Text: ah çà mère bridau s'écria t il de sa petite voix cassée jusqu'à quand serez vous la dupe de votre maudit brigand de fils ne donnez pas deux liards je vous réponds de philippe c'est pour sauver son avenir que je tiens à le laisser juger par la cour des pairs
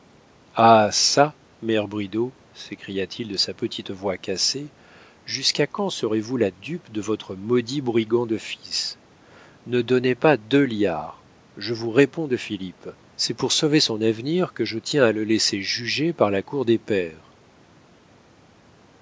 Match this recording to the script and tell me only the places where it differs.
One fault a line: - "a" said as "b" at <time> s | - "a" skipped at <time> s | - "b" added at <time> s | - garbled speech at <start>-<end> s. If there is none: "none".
none